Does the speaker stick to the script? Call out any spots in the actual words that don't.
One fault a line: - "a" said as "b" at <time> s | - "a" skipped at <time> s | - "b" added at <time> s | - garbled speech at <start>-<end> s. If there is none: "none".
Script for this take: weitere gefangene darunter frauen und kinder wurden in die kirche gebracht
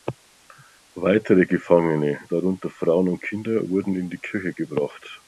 none